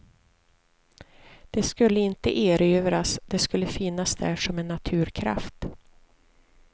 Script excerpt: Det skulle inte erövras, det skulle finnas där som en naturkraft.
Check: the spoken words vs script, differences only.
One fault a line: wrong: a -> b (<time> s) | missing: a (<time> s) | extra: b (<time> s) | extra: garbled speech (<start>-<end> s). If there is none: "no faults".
no faults